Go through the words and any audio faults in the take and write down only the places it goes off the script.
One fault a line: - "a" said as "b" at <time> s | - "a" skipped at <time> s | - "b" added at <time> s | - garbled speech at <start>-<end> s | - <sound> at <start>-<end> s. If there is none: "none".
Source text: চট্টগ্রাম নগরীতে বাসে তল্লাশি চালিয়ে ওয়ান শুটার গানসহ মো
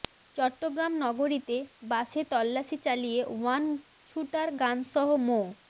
none